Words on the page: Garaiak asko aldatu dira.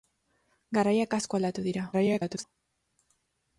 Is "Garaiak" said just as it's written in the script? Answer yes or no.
yes